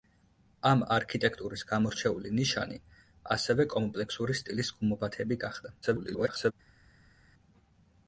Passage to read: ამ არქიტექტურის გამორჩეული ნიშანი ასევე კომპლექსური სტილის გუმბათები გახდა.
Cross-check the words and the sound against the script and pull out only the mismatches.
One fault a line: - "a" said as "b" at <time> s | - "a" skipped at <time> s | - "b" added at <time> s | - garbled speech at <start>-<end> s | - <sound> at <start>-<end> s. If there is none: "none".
- garbled speech at 5.8-6.5 s